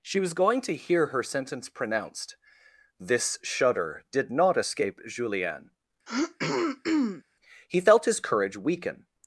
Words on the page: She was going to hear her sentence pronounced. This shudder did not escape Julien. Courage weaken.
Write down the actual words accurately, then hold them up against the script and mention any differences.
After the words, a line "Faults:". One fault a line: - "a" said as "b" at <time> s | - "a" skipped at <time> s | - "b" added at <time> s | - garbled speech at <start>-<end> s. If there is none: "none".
She was going to hear her sentence pronounced. This shudder did not escape Julien. He felt his courage weaken.
Faults:
- "He felt his" added at 7.7 s